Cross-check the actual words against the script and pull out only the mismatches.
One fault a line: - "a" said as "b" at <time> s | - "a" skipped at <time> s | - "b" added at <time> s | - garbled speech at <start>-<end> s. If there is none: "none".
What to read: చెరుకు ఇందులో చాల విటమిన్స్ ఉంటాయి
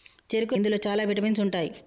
none